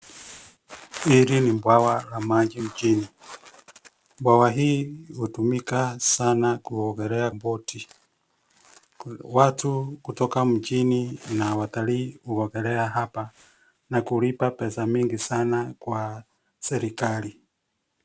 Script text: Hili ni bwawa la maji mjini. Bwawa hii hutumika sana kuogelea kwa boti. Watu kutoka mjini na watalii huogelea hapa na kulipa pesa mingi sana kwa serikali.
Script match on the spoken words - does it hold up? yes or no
no